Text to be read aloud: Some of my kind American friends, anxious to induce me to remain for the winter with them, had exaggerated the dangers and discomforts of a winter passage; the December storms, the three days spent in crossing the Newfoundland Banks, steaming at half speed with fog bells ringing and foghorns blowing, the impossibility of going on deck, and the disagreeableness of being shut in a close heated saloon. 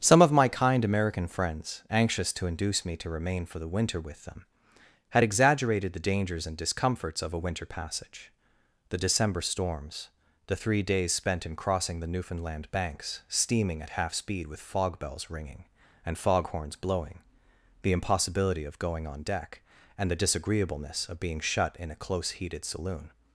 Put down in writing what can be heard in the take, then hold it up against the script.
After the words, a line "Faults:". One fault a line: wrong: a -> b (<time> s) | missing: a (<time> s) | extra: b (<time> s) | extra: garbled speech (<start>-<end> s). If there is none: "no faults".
Some of my kind American friends, anxious to induce me to remain for the winter with them, had exaggerated the dangers and discomforts of a winter passage; the December storms, the three days spent in crossing the Newfoundland Banks, steaming at half speed with fog bells ringing and foghorns blowing, the impossibility of going on deck, and the disagreeableness of being shut in a close heated saloon.
Faults:
no faults